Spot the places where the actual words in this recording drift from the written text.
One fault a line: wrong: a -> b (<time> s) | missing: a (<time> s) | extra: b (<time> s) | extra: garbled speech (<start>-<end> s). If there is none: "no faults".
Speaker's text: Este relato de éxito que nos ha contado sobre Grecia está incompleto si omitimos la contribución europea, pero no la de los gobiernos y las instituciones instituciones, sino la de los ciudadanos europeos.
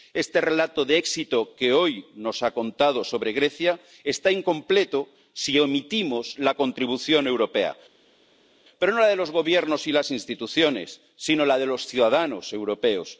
extra: hoy (1.7 s)
missing: instituciones (11.0 s)